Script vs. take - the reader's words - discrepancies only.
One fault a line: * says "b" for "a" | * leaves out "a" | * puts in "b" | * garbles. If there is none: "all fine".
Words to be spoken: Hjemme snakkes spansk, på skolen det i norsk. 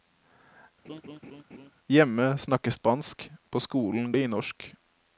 all fine